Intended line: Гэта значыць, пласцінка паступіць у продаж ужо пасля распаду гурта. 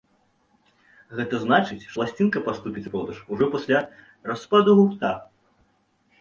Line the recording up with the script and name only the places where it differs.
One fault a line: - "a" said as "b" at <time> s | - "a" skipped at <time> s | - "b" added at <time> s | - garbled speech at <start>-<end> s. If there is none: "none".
none